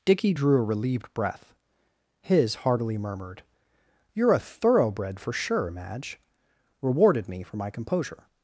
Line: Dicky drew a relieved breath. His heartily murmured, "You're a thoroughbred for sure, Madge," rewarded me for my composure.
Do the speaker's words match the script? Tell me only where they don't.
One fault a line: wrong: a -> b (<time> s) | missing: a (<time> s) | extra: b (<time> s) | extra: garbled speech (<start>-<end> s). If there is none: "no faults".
no faults